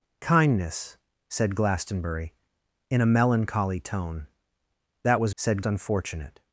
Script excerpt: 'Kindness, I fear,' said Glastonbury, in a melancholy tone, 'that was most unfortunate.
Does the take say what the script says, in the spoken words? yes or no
no